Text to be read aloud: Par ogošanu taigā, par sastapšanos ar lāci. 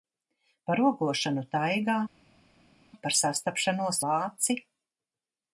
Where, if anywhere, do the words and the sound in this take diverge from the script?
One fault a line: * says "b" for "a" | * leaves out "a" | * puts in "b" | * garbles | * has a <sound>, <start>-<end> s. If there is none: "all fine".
* leaves out "ar"